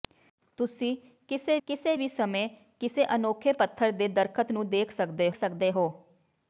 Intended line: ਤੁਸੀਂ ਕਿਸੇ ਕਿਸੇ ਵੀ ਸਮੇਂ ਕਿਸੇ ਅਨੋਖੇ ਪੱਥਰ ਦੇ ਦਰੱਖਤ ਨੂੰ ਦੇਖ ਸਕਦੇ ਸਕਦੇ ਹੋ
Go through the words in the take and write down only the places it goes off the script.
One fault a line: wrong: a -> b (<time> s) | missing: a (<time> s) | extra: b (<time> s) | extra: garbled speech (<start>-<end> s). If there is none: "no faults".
no faults